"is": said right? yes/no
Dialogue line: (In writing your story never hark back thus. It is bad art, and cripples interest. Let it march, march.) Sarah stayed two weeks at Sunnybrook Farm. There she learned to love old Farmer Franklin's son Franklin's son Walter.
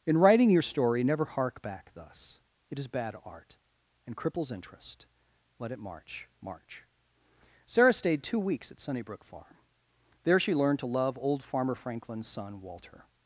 yes